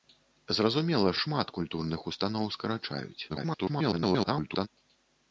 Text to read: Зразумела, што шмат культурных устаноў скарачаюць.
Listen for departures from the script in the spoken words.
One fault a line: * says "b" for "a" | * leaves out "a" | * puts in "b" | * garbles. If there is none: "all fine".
* leaves out "што"
* garbles